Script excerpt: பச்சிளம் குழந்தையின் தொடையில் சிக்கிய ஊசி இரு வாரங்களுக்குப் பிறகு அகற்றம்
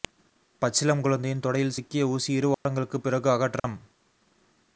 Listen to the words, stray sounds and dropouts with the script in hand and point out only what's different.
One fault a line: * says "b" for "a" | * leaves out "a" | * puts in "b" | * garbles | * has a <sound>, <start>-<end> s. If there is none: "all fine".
* has a dropout, 2.5-2.7 s
* has a dropout, 3.6-3.6 s